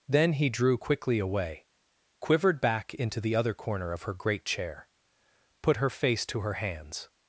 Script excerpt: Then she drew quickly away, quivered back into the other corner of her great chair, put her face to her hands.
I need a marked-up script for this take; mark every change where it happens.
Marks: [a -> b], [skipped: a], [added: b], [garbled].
Then [she -> he] drew quickly away, quivered back into the other corner of her great chair, put her face to her hands.